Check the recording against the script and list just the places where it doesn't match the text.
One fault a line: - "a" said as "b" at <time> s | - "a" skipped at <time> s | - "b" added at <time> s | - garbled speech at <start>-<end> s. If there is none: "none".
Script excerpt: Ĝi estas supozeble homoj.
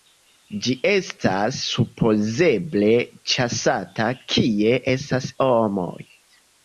- "ĉasata kie estas" added at 3.3 s